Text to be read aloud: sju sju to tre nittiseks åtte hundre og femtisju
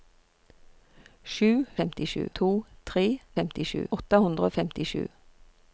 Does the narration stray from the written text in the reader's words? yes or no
yes